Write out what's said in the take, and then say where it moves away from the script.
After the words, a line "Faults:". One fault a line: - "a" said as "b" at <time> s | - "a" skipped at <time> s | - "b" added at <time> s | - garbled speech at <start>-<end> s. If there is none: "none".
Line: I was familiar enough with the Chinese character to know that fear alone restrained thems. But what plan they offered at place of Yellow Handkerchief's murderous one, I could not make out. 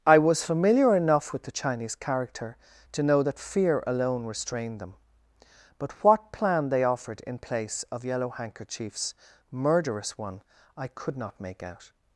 I was familiar enough with the Chinese character to know that fear alone restrained them. But what plan they offered in place of Yellow Handkerchief's murderous one, I could not make out.
Faults:
- "thems" said as "them" at 4.8 s
- "at" said as "in" at 7.2 s